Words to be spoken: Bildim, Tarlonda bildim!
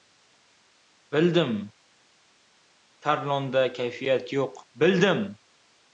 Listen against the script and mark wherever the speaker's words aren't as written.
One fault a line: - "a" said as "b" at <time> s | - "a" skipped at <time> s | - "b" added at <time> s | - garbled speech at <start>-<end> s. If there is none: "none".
- "kayfiyat yo‘q" added at 3.8 s